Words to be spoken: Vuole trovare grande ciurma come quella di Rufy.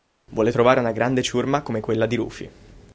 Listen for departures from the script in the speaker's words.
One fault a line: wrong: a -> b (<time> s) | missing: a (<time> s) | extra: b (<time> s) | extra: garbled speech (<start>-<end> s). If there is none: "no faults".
extra: una (0.8 s)